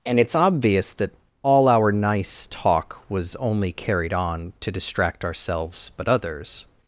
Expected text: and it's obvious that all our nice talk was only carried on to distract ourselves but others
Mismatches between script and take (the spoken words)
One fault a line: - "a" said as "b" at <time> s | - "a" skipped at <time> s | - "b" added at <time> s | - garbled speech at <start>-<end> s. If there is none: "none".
none